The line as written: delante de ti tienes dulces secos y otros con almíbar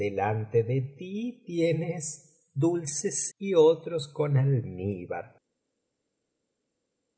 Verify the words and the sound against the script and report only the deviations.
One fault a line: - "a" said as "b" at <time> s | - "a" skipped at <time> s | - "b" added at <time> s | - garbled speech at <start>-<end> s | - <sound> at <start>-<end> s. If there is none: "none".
- "secos" skipped at 3.3 s